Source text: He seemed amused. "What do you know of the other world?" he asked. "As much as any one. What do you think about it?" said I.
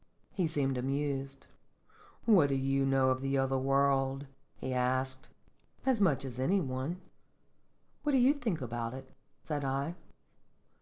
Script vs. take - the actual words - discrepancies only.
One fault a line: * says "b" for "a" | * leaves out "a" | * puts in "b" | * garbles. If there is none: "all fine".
all fine